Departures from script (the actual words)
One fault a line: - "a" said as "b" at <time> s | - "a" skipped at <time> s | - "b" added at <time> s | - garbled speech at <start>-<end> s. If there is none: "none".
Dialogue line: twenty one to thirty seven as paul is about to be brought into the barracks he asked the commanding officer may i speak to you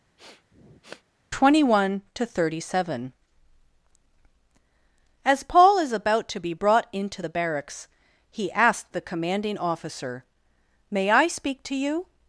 none